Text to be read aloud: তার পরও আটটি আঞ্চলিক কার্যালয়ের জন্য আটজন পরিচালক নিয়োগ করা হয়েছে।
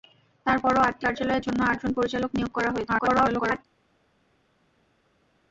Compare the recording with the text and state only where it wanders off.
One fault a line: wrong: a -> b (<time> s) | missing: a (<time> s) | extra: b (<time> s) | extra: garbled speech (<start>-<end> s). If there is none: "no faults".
missing: আঞ্চলিক (1.1 s)
extra: garbled speech (2.9-3.6 s)